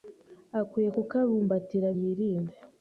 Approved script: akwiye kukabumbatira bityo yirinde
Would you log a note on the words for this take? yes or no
yes